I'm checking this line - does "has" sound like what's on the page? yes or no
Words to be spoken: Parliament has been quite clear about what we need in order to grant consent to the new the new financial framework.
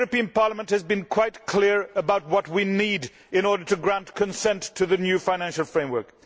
yes